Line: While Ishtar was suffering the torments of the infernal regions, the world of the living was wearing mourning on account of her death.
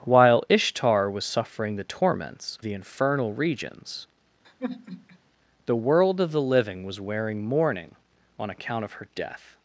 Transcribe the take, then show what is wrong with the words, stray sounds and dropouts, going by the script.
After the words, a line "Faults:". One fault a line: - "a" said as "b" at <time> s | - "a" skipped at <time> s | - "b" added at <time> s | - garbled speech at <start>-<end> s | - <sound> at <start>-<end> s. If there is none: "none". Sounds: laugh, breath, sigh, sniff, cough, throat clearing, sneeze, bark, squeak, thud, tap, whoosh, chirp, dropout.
While Ishtar was suffering the torments the infernal regions, the world of the living was wearing mourning on account of her death.
Faults:
- "of" skipped at 2.6 s
- sigh at 4.4-5.2 s